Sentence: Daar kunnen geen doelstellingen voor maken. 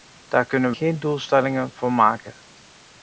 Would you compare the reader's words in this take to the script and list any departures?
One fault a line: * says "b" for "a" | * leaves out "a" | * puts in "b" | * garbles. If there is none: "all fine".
all fine